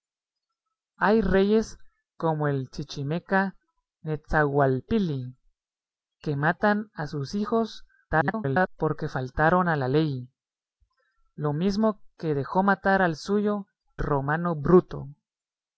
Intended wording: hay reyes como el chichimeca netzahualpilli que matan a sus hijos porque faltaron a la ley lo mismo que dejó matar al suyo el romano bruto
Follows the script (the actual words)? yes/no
no